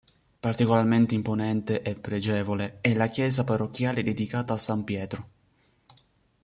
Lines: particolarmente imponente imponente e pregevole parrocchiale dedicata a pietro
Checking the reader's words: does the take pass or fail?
fail